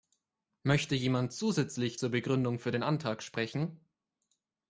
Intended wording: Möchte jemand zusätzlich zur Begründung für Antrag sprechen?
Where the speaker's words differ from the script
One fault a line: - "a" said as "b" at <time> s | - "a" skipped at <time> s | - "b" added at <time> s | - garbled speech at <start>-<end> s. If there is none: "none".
- "den" added at 2.7 s